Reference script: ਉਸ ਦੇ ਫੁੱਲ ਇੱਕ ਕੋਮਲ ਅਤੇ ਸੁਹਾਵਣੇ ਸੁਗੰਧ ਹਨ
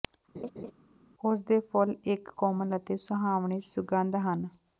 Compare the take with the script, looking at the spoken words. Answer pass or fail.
pass